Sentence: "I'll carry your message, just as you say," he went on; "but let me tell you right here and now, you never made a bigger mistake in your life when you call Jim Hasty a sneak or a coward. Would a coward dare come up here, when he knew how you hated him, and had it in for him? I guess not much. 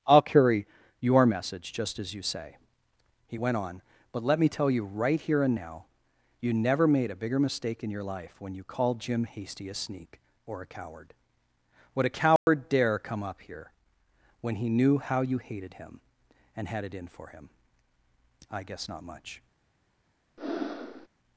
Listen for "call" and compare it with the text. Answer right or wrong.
wrong